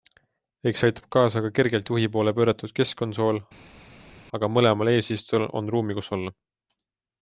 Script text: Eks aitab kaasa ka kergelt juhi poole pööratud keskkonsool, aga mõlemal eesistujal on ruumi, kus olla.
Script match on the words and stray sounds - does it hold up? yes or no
yes